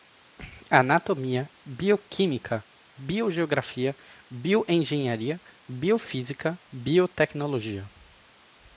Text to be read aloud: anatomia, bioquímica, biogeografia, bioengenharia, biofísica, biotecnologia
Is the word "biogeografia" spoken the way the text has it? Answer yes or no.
yes